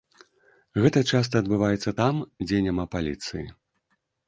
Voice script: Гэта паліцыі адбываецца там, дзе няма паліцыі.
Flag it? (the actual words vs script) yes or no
yes